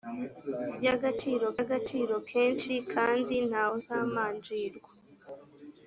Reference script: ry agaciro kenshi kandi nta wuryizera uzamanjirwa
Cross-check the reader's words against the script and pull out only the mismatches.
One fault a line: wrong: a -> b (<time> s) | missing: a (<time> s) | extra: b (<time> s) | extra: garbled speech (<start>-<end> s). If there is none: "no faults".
extra: agaciro (1.6 s)
missing: wuryizera (3.6 s)